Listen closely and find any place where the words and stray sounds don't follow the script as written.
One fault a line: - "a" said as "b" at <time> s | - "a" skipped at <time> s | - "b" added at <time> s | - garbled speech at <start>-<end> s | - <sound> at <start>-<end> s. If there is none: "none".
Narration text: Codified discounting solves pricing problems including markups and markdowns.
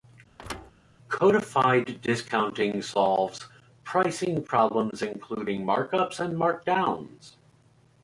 - thud at 0.4-0.7 s